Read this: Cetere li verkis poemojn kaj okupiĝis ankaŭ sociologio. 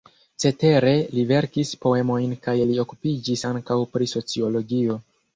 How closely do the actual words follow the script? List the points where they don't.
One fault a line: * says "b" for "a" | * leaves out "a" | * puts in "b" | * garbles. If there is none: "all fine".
* puts in "li"
* puts in "pri"